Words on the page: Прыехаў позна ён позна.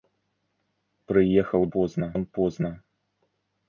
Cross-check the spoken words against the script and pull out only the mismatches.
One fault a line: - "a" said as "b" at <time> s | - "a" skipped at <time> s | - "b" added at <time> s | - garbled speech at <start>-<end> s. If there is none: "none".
none